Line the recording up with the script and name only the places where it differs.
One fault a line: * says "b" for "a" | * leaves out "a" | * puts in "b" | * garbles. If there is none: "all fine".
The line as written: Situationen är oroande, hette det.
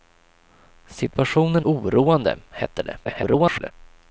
* leaves out "är"
* garbles